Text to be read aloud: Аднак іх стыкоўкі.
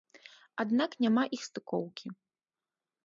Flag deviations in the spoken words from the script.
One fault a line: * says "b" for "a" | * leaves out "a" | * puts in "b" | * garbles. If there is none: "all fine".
* puts in "няма"